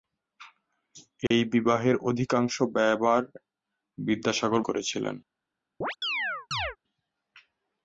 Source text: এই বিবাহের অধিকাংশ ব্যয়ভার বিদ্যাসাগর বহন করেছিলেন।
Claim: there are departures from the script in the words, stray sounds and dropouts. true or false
true